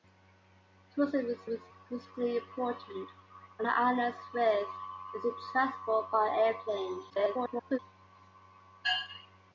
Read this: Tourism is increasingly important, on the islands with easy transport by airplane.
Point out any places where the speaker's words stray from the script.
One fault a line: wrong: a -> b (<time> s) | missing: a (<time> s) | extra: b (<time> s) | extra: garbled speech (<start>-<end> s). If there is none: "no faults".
extra: is (1.5 s)
extra: garbled speech (7.1-7.8 s)